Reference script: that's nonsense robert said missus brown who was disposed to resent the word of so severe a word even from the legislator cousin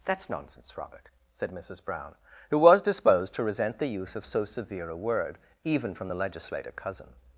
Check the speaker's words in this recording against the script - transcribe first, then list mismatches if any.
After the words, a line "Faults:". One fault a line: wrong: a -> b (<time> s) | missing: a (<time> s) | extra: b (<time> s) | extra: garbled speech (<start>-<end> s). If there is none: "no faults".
that's nonsense robert said missus brown who was disposed to resent the use of so severe a word even from the legislator cousin
Faults:
wrong: word -> use (3.9 s)